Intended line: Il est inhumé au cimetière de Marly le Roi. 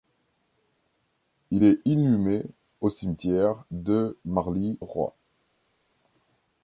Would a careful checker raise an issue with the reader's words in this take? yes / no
yes